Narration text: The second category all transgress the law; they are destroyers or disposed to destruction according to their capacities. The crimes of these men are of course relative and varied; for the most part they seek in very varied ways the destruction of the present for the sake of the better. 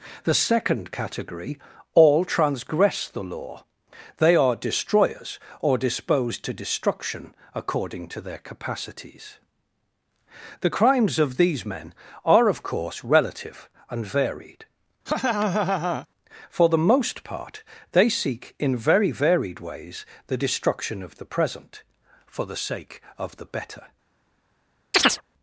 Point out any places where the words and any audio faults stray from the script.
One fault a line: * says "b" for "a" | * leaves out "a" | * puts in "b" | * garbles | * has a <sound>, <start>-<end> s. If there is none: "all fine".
* has a laugh, 15.1-16.1 s
* has a chirp, 24.9-25.2 s